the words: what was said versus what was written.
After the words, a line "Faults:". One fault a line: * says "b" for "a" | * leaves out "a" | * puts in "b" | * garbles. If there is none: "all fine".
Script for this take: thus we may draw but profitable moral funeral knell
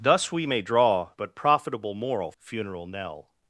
thus we may draw but profitable moral funeral knell
Faults:
all fine